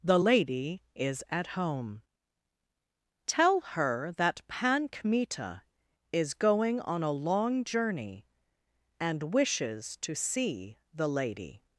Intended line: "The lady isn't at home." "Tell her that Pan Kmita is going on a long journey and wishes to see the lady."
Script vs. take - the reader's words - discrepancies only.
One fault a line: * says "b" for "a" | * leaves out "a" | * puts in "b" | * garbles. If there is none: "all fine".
* says "is" for "isn't"